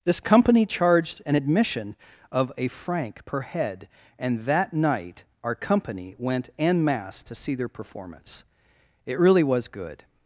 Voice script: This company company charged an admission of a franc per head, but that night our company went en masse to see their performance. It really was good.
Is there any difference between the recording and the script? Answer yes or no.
yes